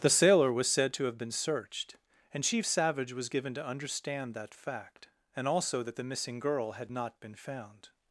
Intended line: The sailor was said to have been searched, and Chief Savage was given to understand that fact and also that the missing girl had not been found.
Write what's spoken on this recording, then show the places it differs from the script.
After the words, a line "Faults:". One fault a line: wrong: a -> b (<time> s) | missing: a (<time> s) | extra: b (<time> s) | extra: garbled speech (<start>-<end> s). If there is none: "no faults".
The sailor was said to have been searched, and Chief Savage was given to understand that fact and also that the missing girl had not been found.
Faults:
no faults